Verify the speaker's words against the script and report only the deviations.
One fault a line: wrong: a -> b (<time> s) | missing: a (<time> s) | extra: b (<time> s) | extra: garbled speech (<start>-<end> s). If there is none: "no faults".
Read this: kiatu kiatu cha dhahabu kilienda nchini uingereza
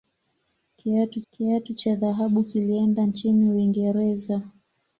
no faults